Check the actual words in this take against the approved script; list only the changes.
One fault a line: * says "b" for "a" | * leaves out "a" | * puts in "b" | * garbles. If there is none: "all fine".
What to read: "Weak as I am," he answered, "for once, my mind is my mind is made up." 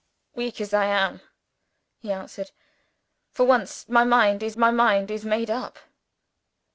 all fine